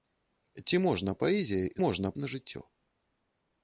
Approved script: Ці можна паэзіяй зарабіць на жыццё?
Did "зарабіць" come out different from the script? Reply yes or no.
yes